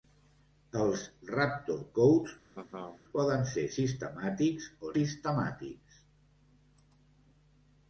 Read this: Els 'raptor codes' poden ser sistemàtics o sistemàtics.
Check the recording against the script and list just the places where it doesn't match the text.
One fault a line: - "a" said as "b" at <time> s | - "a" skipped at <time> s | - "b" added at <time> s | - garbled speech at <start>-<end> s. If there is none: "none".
none